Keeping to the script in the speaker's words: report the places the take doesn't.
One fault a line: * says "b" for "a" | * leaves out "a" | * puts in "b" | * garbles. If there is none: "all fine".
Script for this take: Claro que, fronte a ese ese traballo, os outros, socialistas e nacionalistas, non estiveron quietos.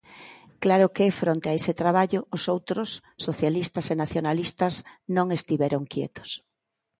* leaves out "ese"